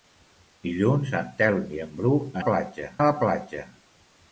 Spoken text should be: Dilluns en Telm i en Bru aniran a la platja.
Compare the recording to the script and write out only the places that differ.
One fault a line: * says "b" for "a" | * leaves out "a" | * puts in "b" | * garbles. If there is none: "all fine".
* says "platja" for "aniran"